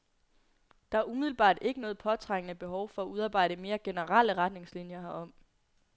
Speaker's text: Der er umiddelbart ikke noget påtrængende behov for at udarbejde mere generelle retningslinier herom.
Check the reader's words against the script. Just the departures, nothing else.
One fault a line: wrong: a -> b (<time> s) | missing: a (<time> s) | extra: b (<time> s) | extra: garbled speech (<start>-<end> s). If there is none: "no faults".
no faults